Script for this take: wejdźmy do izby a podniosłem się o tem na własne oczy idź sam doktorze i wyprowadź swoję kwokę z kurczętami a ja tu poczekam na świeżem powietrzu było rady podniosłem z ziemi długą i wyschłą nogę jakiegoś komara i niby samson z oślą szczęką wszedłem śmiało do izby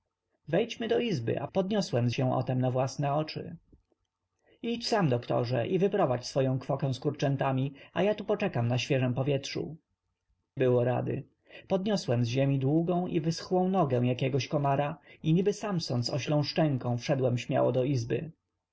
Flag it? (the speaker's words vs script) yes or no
no